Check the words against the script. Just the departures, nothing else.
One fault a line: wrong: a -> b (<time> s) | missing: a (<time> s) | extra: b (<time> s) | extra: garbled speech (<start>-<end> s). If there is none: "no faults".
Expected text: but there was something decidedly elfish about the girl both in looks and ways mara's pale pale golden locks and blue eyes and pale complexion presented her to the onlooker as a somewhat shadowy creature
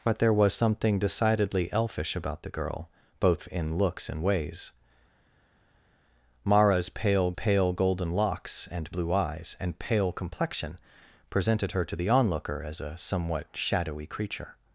no faults